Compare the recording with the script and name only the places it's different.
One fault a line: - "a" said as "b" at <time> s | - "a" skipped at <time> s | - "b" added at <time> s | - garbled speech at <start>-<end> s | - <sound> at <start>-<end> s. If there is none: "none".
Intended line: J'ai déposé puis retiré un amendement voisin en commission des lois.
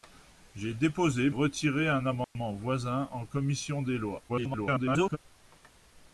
- "puis" skipped at 1.3 s
- dropout at 2.2-2.4 s
- garbled speech at 4.3-5.2 s